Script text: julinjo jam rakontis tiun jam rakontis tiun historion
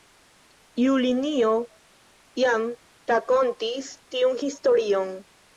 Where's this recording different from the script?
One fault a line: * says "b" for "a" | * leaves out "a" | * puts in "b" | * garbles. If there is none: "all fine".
* leaves out "jam rakontis tiun"